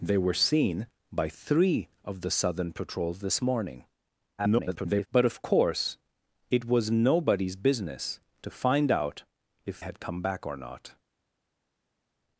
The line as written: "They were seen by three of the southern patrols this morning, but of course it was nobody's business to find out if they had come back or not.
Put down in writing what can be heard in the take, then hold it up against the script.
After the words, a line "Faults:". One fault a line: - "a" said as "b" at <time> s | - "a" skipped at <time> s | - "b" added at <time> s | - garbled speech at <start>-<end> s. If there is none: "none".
"They were seen by three of the southern patrols this morning, [garbled] but of course it was nobody's business to find out if had come back or not.
Faults:
- garbled speech at 4.4-5.1 s
- "they" skipped at 9.8 s